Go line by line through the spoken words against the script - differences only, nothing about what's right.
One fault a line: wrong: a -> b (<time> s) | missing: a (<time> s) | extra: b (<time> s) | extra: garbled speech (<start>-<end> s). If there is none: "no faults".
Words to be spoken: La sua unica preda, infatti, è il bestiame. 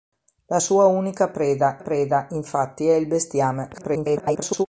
extra: preda (1.8 s)
extra: garbled speech (3.7-4.7 s)